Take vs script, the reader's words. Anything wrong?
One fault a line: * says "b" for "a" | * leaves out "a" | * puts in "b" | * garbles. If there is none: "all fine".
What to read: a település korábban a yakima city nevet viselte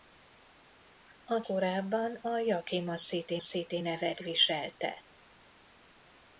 * leaves out "település"
* puts in "city"